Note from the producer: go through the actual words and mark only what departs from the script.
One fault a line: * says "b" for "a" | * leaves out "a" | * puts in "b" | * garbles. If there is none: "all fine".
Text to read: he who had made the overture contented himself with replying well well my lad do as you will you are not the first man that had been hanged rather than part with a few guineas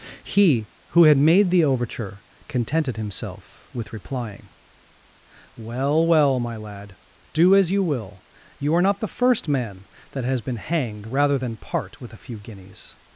* says "has" for "had"